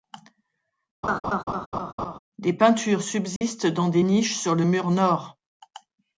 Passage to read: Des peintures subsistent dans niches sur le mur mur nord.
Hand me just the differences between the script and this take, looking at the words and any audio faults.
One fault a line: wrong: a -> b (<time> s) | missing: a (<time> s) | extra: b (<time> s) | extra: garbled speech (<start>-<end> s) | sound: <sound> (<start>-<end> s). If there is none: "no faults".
sound: laugh (1.0-2.2 s)
sound: dropout (3.4-3.4 s)
extra: des (3.9 s)
missing: mur (4.9 s)